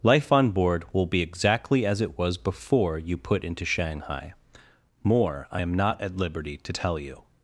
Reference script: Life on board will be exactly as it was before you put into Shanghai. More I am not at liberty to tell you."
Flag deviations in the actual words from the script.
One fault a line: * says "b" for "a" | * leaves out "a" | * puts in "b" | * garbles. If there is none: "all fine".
all fine